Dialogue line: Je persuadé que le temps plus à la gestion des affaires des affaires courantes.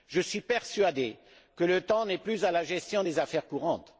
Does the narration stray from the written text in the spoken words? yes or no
yes